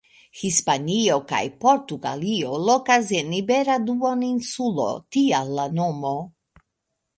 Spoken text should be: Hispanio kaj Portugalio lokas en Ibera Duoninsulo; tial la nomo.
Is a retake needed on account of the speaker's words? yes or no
no